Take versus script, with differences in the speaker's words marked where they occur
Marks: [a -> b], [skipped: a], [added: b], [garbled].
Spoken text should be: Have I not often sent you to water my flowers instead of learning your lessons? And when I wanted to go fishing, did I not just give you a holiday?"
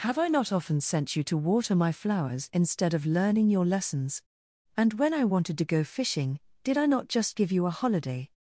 Have I not often sent you to water my flowers instead of learning your lessons? And when I wanted to go fishing, did I not just give you a holiday?"